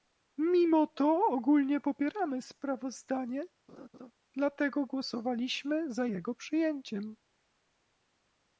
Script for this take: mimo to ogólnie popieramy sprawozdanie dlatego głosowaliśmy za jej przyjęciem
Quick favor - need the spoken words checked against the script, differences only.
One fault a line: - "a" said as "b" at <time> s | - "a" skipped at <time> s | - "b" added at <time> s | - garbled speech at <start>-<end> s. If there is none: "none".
- "jej" said as "jego" at 6.0 s